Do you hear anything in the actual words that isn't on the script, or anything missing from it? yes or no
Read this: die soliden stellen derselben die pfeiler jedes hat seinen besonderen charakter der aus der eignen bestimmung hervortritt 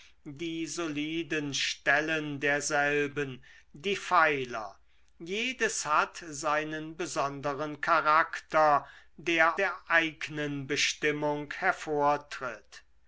yes